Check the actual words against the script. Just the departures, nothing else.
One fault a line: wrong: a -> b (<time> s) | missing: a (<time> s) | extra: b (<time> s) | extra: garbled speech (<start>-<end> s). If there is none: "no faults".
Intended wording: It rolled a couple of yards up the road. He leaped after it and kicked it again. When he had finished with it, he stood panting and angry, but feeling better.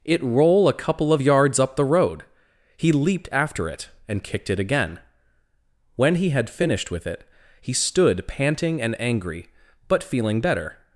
wrong: rolled -> roll (0.2 s)